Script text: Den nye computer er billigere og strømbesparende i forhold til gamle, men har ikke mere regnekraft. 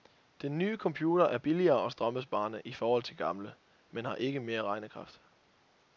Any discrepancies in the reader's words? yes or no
no